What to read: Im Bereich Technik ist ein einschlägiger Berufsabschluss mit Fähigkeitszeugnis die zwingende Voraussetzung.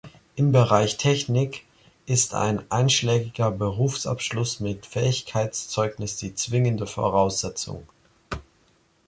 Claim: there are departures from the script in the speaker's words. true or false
false